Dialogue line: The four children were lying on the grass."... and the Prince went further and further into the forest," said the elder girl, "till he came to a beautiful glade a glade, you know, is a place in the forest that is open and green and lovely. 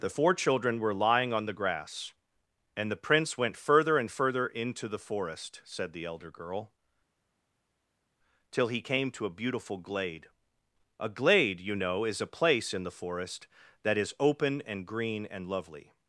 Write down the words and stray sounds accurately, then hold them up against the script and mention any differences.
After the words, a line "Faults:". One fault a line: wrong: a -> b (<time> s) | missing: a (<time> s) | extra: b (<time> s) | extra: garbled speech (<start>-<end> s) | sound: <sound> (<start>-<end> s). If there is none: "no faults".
The four children were lying on the grass."... and the Prince went further and further into the forest," said the elder girl, "till he came to a beautiful glade a glade, you know, is a place in the forest that is open and green and lovely.
Faults:
no faults